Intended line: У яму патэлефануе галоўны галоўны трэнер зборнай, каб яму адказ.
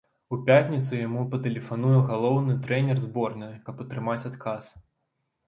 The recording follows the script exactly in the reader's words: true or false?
false